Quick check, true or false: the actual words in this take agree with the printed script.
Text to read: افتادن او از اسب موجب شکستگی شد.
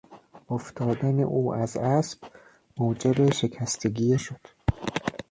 true